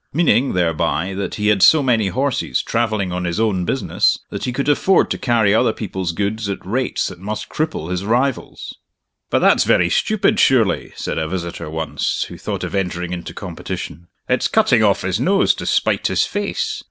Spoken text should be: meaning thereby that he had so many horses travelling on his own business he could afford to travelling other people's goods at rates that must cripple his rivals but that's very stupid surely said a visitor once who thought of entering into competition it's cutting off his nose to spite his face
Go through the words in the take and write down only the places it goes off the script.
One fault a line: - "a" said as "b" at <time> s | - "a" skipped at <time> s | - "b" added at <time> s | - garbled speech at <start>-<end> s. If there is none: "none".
- "that" added at 4.3 s
- "travelling" said as "carry" at 5.2 s